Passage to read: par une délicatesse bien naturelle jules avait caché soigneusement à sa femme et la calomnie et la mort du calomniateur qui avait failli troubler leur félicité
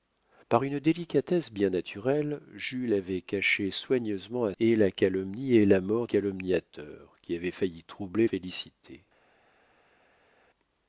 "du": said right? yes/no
no